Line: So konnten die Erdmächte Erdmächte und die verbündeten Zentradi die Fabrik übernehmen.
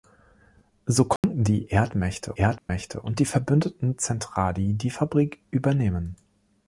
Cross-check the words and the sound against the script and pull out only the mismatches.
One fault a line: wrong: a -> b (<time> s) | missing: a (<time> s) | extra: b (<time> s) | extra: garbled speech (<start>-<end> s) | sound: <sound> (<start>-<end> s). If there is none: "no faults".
sound: dropout (1.2-1.2 s)
sound: dropout (2.6-2.7 s)